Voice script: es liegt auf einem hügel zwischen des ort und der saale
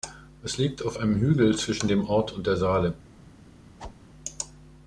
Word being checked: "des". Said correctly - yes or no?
no